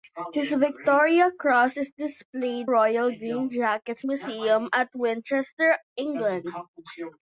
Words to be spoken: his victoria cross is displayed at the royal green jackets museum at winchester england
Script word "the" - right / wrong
wrong